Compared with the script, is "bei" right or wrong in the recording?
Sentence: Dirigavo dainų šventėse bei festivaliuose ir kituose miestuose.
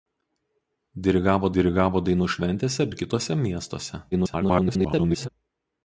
wrong